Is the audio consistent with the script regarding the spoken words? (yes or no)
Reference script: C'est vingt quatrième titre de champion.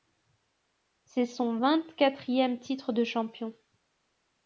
no